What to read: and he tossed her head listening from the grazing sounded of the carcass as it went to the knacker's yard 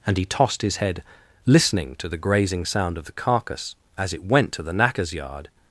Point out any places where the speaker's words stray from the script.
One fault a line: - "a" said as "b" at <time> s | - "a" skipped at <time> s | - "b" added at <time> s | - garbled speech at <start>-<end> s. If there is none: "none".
- "her" said as "his" at 0.6 s
- "from" said as "to" at 2.0 s
- "sounded" said as "sound" at 2.6 s